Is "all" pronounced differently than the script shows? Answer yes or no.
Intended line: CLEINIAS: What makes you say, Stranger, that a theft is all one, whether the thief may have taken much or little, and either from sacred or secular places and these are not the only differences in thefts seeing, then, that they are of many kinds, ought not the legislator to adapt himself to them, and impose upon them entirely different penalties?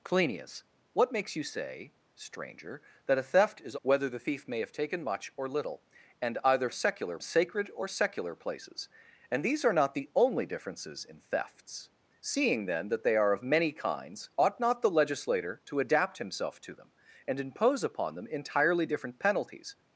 yes